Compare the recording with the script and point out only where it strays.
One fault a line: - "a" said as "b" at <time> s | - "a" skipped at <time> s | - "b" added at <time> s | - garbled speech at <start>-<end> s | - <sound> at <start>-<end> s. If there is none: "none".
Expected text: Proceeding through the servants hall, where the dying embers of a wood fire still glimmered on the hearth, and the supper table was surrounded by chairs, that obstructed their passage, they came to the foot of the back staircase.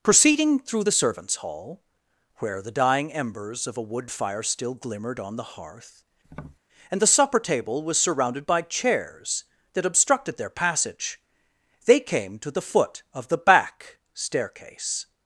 - tap at 6.2-6.6 s